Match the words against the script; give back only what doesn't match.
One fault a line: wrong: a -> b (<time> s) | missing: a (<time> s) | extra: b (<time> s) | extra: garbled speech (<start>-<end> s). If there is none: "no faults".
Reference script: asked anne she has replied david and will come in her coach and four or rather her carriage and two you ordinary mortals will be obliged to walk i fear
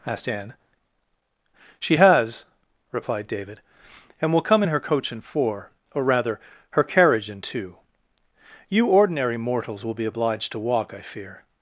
no faults